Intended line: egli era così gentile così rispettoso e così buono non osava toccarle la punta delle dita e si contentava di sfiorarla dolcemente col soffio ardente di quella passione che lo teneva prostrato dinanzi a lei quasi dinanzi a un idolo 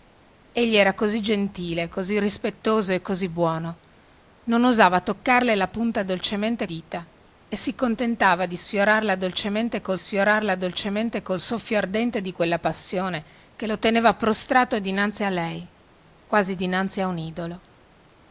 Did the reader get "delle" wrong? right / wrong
wrong